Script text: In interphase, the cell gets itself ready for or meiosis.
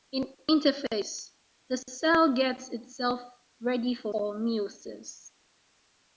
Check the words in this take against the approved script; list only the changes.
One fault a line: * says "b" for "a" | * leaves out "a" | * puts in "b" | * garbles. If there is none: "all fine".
all fine